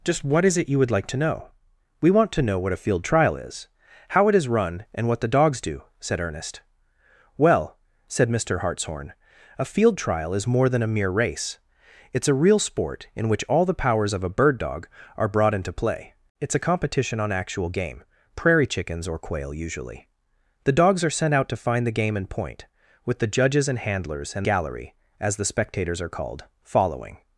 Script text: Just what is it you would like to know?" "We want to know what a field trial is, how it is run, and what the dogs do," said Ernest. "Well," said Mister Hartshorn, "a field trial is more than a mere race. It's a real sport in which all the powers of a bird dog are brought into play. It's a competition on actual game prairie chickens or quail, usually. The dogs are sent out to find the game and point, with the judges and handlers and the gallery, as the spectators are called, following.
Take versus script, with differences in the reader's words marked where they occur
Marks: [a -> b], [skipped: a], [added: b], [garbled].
Just what is it you would like to know?" "We want to know what a field trial is, how it is run, and what the dogs do," said Ernest. "Well," said Mister Hartshorn, "a field trial is more than a mere race. It's a real sport in which all the powers of a bird dog are brought into play. It's a competition on actual game prairie chickens or quail, usually. The dogs are sent out to find the game and point, with the judges and handlers and [skipped: the] gallery, as the spectators are called, following.